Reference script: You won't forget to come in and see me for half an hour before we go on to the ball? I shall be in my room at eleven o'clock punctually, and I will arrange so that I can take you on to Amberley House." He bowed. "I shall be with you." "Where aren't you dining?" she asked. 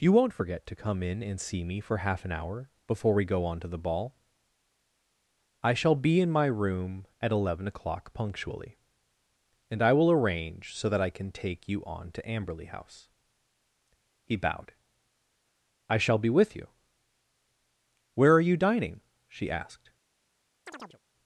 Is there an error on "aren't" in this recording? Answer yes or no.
yes